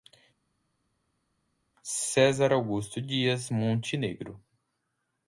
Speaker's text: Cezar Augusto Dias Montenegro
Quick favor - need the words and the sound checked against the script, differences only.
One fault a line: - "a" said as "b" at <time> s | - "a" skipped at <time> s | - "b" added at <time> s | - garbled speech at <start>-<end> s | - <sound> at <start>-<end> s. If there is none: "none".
none